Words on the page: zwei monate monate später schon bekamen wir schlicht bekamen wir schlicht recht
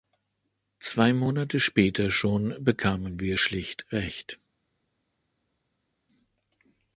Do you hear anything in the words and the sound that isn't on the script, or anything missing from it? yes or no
yes